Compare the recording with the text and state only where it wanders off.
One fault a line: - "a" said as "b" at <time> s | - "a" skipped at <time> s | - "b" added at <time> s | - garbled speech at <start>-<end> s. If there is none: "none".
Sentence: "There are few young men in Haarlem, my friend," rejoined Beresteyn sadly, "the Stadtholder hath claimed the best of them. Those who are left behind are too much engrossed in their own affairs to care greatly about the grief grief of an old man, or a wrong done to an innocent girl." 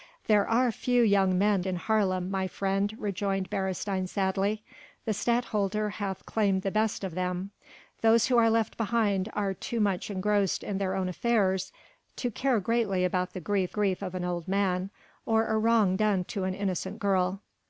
none